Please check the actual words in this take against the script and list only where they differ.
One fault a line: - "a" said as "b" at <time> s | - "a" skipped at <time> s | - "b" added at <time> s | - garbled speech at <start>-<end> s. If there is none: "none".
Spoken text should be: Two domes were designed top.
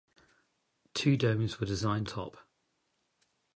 none